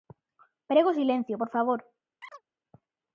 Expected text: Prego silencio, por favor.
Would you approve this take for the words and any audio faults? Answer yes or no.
no